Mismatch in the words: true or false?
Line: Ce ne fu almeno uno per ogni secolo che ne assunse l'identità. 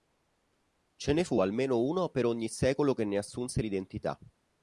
false